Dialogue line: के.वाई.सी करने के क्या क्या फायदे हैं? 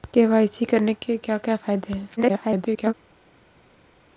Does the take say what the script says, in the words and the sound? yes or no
no